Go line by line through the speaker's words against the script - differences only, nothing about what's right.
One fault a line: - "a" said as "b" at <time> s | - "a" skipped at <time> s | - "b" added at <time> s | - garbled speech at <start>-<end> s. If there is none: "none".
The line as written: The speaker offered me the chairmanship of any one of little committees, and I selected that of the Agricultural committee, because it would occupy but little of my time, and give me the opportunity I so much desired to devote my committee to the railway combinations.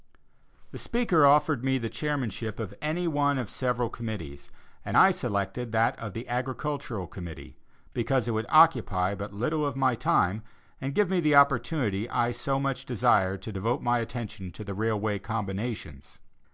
- "little" said as "several" at 3.5 s
- "committee" said as "attention" at 14.0 s